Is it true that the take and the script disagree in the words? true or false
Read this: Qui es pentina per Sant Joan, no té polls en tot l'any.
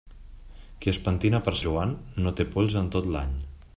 true